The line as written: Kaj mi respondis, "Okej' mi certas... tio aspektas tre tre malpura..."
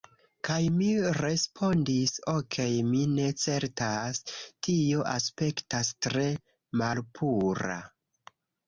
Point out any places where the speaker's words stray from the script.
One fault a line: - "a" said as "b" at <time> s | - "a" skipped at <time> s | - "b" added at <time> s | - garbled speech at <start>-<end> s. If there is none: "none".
- "ne" added at 3.1 s
- "tre" skipped at 6.3 s